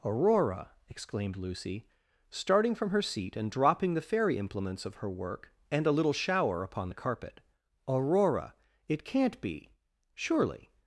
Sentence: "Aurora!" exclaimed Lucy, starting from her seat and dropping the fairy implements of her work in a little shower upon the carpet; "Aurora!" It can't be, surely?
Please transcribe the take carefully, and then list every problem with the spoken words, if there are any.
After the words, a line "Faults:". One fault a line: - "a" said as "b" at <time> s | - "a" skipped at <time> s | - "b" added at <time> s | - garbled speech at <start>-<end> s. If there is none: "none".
"Aurora!" exclaimed Lucy, starting from her seat and dropping the fairy implements of her work and a little shower upon the carpet; "Aurora!" It can't be, surely?
Faults:
- "in" said as "and" at 5.7 s